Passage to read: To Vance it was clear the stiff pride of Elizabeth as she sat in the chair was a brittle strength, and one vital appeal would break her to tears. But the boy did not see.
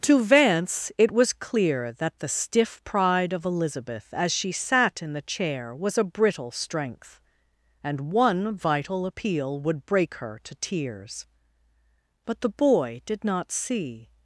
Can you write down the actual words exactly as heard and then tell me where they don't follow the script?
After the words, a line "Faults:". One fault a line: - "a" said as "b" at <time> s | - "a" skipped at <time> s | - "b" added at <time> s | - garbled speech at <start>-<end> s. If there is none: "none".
To Vance it was clear that the stiff pride of Elizabeth as she sat in the chair was a brittle strength, and one vital appeal would break her to tears. But the boy did not see.
Faults:
- "that" added at 1.9 s